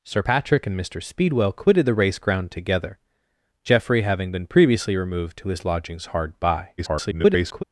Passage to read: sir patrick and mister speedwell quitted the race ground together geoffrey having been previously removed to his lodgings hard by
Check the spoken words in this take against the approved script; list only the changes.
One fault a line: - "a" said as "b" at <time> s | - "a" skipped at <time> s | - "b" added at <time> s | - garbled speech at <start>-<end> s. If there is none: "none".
- garbled speech at 6.8-7.6 s